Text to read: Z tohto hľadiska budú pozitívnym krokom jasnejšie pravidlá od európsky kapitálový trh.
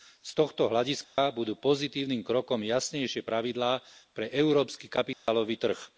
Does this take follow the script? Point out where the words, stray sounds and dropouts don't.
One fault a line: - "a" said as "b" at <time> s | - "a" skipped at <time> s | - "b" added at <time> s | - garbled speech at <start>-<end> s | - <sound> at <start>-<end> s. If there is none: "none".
- dropout at 1.0-1.2 s
- "od" said as "pre" at 4.1 s
- dropout at 5.1-5.3 s